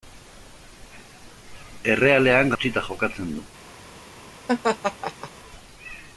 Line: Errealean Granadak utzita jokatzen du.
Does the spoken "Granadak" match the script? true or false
false